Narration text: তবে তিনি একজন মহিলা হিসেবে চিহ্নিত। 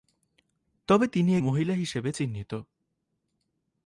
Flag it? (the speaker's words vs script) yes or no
yes